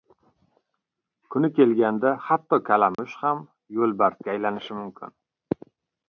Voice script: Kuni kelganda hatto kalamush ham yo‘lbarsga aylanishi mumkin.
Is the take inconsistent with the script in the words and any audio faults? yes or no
yes